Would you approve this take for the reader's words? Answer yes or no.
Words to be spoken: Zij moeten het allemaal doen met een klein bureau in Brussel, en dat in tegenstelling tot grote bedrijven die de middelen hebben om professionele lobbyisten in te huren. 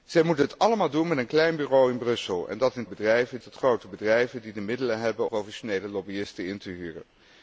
no